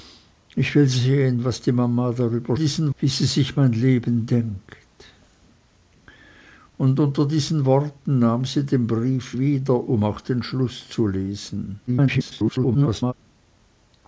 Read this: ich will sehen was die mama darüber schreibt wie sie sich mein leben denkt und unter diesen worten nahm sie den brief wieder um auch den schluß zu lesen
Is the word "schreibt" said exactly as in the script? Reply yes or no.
no